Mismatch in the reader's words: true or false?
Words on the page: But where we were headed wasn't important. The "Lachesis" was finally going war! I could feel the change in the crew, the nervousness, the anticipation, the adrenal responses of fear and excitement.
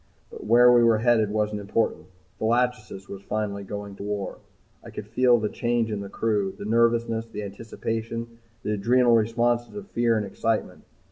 false